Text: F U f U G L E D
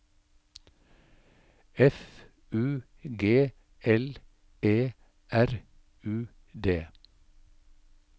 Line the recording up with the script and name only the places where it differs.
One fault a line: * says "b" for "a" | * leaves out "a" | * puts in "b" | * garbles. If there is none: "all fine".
* leaves out "f U"
* puts in "R U"